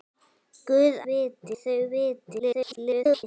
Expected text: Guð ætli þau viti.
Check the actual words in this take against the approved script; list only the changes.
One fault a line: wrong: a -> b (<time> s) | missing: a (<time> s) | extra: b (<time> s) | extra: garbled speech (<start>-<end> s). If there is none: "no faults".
wrong: ætli -> viti (1.1 s)
extra: garbled speech (2.4-3.2 s)